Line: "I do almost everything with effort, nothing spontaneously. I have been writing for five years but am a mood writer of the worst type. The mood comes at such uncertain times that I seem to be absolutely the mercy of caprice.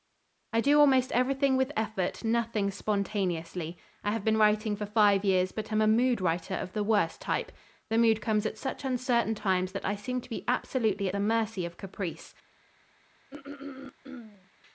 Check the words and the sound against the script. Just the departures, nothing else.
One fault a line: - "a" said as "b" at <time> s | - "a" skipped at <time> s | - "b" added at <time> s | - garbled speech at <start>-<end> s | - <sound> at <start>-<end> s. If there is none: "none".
- throat clearing at 13.3-14.5 s